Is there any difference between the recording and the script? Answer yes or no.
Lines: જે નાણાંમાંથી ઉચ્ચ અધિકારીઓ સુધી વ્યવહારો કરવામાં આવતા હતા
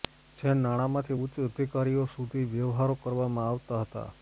no